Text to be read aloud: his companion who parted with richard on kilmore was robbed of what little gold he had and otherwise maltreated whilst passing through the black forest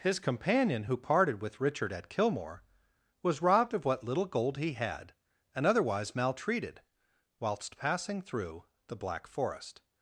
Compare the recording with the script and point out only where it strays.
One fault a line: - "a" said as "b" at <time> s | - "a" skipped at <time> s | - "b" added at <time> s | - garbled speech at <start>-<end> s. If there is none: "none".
- "on" said as "at" at 1.9 s